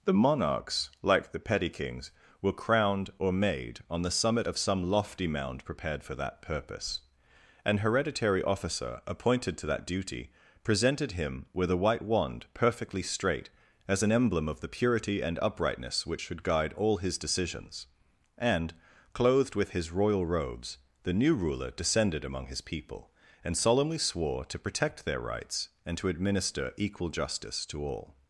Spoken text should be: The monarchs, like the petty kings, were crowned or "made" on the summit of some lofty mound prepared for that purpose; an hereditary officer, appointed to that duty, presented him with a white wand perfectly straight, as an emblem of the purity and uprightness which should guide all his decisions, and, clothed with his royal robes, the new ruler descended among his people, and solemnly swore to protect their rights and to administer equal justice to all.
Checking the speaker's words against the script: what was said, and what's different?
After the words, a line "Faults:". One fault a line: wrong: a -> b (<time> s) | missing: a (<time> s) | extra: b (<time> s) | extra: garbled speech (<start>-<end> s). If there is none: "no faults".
The monarchs, like the petty kings, were crowned or "made" on the summit of some lofty mound prepared for that purpose; an hereditary officer, appointed to that duty, presented him with a white wand perfectly straight, as an emblem of the purity and uprightness which should guide all his decisions, and, clothed with his royal robes, the new ruler descended among his people, and solemnly swore to protect their rights and to administer equal justice to all.
Faults:
no faults